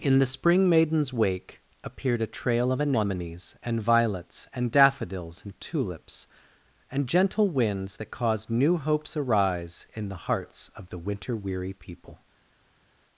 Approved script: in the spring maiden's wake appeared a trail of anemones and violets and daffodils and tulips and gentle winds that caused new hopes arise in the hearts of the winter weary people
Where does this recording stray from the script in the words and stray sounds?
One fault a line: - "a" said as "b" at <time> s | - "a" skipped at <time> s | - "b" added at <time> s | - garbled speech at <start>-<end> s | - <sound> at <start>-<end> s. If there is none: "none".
none